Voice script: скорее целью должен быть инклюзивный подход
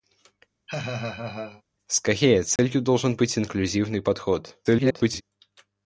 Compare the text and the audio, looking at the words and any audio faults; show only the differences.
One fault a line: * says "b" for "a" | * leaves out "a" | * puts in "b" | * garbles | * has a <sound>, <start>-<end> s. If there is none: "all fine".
* has a laugh, 0.7-1.6 s
* has a dropout, 2.6-2.6 s
* garbles